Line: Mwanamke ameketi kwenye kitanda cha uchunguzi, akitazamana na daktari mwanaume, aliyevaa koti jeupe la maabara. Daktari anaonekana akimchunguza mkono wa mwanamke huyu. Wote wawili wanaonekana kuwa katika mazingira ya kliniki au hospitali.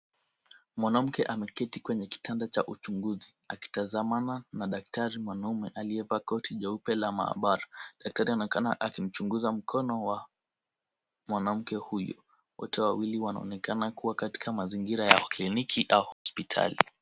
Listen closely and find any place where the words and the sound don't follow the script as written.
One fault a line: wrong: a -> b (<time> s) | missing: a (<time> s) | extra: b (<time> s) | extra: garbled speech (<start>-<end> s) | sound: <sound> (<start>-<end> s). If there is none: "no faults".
sound: dropout (16.1-16.3 s)